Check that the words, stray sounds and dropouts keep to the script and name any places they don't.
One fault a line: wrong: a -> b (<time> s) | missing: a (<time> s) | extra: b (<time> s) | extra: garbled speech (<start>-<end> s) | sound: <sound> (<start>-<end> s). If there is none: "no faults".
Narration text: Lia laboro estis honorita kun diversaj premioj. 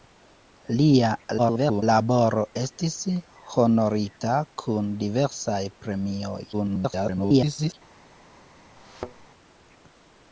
extra: garbled speech (1.4-1.8 s)
extra: garbled speech (6.5-7.7 s)
sound: thud (8.8-9.3 s)